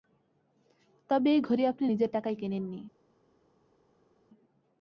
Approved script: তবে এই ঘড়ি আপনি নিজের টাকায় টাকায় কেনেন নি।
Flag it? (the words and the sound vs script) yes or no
yes